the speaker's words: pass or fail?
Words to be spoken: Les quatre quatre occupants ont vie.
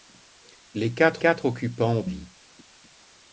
pass